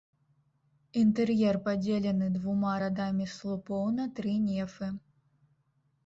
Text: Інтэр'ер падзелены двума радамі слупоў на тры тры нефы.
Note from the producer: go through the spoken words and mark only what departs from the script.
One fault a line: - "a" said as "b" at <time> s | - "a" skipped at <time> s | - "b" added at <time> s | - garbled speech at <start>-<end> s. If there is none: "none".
- "тры" skipped at 4.3 s